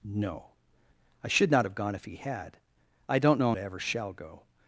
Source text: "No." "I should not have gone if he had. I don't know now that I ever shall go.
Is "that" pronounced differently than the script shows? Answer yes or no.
yes